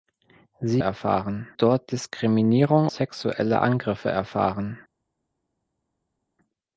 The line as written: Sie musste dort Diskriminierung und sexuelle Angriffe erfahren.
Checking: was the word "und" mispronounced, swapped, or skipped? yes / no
yes